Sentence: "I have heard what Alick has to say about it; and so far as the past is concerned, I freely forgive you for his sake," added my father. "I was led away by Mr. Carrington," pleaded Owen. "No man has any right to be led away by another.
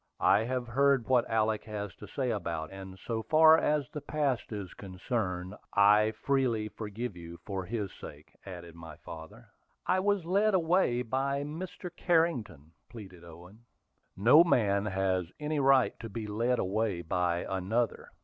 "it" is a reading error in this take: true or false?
true